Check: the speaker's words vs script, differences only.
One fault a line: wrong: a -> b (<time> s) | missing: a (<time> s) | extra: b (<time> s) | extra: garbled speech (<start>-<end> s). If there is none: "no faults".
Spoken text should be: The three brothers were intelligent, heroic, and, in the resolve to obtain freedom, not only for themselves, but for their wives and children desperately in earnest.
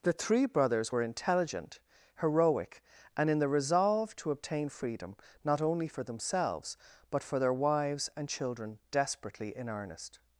no faults